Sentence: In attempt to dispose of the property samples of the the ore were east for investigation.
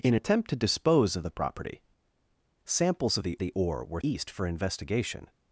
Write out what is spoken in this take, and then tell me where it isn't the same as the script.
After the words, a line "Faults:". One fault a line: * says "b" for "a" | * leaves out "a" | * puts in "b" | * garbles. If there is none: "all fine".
In attempt to dispose of the property samples of the the ore were east for investigation.
Faults:
all fine